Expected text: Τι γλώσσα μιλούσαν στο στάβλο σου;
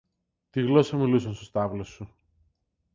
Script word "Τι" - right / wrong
right